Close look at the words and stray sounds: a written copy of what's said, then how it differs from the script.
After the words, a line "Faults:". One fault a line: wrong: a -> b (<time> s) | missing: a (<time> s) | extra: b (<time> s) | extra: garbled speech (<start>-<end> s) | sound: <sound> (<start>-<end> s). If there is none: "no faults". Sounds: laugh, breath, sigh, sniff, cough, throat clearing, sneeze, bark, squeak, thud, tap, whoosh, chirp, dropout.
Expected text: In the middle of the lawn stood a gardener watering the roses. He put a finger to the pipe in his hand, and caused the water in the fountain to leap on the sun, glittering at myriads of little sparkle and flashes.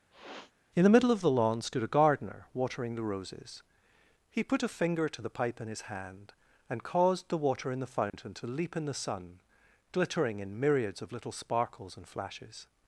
In the middle of the lawn stood a gardener watering the roses. He put a finger to the pipe in his hand, and caused the water in the fountain to leap in the sun, glittering in myriads of little sparkles and flashes.
Faults:
sound: sniff (0.1-0.5 s)
sound: dropout (8.1-8.1 s)
wrong: on -> in (8.8 s)
wrong: at -> in (10.4 s)
wrong: sparkle -> sparkles (11.3 s)